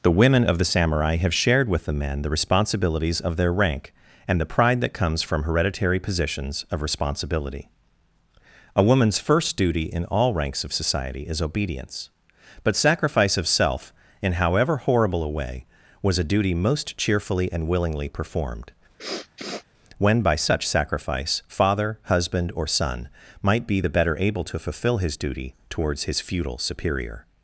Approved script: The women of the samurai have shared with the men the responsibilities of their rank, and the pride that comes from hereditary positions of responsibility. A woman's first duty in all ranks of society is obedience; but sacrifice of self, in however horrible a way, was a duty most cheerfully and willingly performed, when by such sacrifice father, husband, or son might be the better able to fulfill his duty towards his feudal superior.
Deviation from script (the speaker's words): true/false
false